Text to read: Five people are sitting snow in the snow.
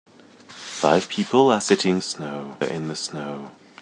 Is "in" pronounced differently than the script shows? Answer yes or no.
no